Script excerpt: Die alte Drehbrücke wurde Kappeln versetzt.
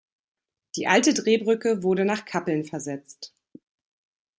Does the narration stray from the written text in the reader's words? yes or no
yes